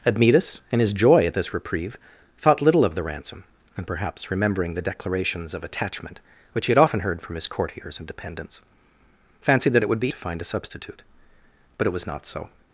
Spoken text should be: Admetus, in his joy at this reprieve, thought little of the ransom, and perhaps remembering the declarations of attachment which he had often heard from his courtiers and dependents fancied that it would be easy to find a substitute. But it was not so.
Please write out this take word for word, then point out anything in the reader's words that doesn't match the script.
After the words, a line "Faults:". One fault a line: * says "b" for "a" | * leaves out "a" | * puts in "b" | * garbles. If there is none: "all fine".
Admetus, in his joy at this reprieve, thought little of the ransom, and perhaps remembering the declarations of attachment which he had often heard from his courtiers and dependents fancied that it would be to find a substitute. But it was not so.
Faults:
* leaves out "easy"